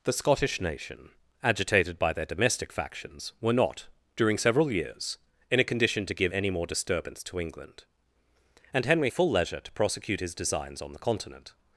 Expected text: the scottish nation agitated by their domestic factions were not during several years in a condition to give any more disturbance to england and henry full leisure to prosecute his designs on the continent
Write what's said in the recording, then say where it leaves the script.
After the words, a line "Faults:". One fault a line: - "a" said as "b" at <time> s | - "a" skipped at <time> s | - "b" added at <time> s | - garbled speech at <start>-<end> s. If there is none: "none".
the scottish nation agitated by their domestic factions were not during several years in a condition to give any more disturbance to england and henry full leisure to prosecute his designs on the continent
Faults:
none